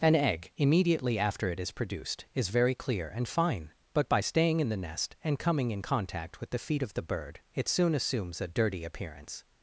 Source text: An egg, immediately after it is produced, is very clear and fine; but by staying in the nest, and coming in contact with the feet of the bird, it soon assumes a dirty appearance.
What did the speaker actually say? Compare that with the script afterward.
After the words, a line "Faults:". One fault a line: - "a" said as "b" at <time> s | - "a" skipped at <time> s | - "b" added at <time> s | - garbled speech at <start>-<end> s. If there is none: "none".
An egg, immediately after it is produced, is very clear and fine; but by staying in the nest, and coming in contact with the feet of the bird, it soon assumes a dirty appearance.
Faults:
none